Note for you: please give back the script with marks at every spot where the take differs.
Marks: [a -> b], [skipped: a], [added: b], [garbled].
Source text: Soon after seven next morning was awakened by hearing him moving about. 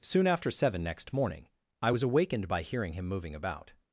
Soon after seven next morning [added: I] was awakened by hearing him moving about.